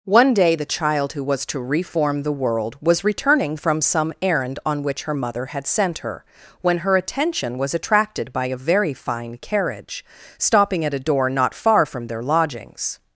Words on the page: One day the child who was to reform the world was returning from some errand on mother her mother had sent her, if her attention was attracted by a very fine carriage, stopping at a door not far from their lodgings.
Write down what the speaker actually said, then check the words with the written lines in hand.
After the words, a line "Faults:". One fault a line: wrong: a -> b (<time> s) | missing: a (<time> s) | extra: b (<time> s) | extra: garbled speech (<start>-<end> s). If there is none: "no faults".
One day the child who was to reform the world was returning from some errand on which her mother had sent her, when her attention was attracted by a very fine carriage, stopping at a door not far from their lodgings.
Faults:
wrong: mother -> which (4.8 s)
wrong: if -> when (6.6 s)